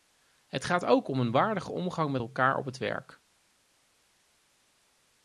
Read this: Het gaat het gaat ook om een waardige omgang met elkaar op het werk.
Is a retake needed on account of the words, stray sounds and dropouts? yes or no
yes